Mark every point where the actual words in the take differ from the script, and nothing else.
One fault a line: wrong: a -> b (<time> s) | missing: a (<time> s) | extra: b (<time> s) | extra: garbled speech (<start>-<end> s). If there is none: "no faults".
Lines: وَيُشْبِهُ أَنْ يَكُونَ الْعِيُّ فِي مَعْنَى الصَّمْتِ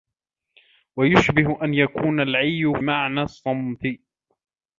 missing: فِي (2.7 s)